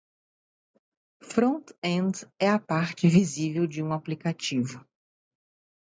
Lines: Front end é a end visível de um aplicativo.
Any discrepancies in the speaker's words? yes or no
yes